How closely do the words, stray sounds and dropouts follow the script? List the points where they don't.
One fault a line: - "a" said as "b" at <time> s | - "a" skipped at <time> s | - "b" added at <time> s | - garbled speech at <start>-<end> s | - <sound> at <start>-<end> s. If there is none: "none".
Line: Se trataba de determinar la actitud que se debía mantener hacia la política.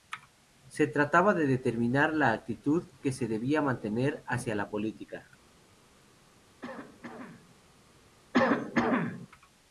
- cough at 6.6-7.5 s
- cough at 8.3-9.3 s